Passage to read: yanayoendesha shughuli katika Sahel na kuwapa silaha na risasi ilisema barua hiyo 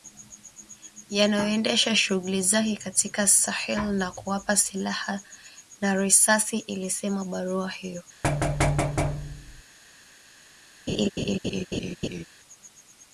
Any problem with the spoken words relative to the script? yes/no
yes